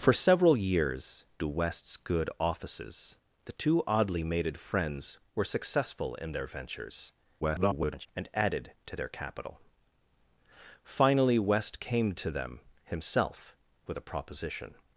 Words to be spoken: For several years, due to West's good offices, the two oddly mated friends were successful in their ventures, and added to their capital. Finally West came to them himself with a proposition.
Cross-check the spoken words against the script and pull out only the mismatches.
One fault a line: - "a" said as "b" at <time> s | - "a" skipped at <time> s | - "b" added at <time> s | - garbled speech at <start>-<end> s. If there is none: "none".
- "due" skipped at 1.2 s
- garbled speech at 7.4-8.1 s